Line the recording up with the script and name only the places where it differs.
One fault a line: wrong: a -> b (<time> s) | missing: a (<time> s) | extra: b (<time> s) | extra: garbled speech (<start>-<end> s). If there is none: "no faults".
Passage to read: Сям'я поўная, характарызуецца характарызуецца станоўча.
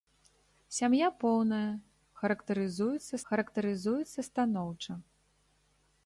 no faults